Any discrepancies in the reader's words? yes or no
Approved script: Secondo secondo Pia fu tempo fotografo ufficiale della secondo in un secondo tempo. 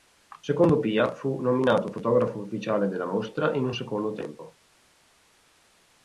yes